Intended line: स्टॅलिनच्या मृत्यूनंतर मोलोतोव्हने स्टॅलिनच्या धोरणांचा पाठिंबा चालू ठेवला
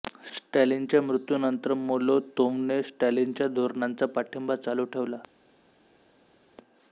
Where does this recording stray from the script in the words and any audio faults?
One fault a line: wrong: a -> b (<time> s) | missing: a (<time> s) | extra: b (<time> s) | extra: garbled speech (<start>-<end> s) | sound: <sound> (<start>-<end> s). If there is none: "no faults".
no faults